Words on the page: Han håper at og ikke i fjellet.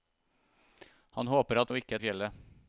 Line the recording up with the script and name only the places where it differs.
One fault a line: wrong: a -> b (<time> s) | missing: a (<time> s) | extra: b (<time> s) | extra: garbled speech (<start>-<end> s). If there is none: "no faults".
no faults